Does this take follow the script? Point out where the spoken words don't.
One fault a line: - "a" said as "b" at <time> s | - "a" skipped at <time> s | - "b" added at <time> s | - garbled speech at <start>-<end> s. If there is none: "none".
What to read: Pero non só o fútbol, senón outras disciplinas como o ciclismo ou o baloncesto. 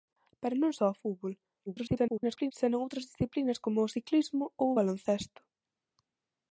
- garbled speech at 1.7-2.5 s